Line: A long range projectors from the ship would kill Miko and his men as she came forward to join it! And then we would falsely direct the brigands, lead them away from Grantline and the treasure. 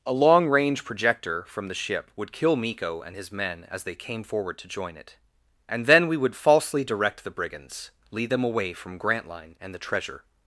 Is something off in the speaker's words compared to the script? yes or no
yes